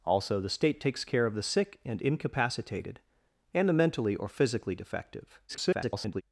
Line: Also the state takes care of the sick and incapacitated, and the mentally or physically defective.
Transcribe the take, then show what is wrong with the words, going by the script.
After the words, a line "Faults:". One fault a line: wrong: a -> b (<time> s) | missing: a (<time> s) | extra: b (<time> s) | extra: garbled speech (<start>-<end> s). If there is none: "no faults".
Also the state takes care of the sick and incapacitated, and the mentally or physically defective. [garbled]
Faults:
extra: garbled speech (5.5-6.2 s)